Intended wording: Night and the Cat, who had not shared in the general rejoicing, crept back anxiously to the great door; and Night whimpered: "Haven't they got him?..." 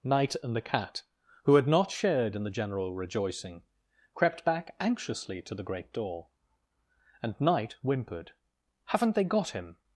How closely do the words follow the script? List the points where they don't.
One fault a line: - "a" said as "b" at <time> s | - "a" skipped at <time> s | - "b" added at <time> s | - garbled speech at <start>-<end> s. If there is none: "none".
none